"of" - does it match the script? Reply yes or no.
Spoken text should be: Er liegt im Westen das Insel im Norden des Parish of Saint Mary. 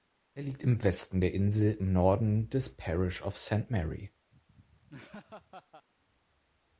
yes